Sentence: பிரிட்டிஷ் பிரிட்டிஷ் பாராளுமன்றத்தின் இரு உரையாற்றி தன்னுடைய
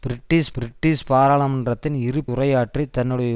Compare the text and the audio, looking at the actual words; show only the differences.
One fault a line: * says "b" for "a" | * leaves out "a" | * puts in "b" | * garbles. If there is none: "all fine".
all fine